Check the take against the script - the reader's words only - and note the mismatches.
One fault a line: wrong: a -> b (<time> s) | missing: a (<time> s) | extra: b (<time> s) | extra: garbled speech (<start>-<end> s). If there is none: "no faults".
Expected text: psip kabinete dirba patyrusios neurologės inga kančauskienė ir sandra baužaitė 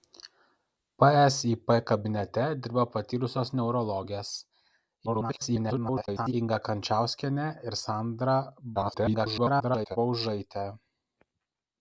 extra: garbled speech (5.1-6.3 s)
extra: garbled speech (8.7-10.0 s)